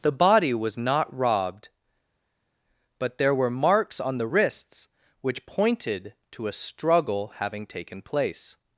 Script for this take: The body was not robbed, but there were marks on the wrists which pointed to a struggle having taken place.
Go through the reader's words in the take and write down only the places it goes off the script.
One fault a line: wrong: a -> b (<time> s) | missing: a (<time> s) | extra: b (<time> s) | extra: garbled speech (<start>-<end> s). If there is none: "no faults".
no faults